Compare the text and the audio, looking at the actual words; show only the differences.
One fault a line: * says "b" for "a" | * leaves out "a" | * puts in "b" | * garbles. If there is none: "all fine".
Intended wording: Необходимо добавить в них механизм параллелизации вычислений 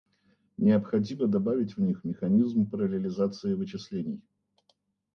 all fine